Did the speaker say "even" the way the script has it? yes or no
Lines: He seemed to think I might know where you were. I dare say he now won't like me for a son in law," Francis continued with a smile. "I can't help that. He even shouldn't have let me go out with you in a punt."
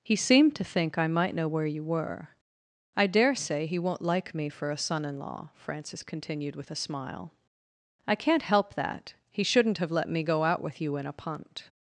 no